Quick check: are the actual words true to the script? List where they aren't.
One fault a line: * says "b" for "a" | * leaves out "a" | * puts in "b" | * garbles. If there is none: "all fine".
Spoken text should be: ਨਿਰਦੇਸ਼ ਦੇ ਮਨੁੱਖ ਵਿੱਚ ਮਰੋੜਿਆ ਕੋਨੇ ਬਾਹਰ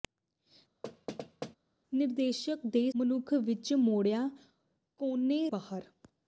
all fine